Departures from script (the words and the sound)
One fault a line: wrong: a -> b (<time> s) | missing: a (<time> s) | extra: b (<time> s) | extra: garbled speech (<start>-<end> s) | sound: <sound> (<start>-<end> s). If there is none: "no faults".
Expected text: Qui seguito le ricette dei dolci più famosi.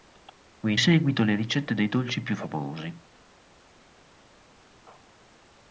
no faults